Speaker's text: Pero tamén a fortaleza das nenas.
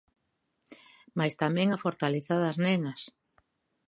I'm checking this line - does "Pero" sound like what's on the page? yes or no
no